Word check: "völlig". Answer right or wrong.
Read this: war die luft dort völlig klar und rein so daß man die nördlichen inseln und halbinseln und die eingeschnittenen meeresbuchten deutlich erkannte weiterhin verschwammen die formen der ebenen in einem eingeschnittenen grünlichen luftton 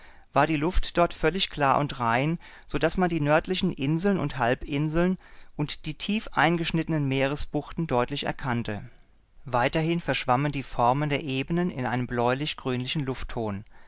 right